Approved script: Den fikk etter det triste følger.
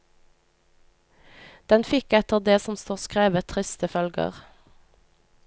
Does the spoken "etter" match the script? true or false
true